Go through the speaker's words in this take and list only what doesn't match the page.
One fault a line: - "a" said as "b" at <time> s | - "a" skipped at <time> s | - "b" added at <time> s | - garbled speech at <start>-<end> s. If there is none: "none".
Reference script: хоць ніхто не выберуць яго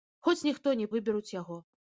none